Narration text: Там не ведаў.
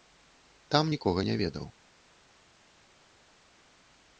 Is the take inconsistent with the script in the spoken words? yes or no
yes